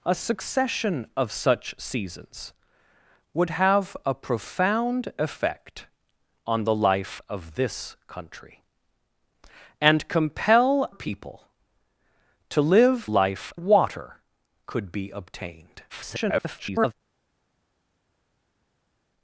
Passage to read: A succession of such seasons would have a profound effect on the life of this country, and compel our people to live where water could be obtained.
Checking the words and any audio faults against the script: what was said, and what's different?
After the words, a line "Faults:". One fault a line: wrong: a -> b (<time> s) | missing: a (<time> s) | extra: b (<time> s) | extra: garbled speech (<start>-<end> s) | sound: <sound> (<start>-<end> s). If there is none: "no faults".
A succession of such seasons would have a profound effect on the life of this country, and compel people to live life water could be obtained. [garbled]
Faults:
missing: our (10.9 s)
wrong: where -> life (13.0 s)
extra: garbled speech (15.9-16.9 s)